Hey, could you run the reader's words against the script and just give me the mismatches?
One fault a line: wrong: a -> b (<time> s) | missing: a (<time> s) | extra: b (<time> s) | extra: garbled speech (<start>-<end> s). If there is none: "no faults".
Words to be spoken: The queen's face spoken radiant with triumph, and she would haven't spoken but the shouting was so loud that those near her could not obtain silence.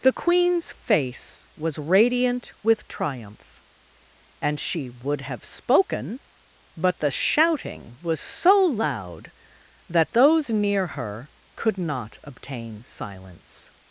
wrong: spoken -> was (1.6 s)
wrong: haven't -> have (5.2 s)